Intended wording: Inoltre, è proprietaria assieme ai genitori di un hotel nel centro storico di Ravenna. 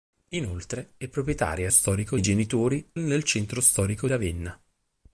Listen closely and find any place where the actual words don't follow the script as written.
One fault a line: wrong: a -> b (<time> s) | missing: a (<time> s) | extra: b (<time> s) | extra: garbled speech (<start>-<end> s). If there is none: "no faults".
wrong: assieme -> storico (1.7 s)
missing: di un hotel (2.9 s)
missing: di (4.1 s)